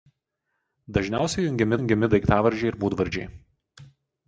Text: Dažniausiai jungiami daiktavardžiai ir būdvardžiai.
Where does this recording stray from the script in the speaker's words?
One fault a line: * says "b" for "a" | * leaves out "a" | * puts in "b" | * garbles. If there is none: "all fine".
* puts in "jungiami"